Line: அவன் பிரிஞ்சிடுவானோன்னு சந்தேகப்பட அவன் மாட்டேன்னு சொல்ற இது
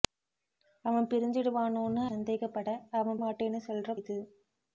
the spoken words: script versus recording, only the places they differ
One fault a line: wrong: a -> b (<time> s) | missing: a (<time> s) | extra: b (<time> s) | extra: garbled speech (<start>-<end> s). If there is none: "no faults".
no faults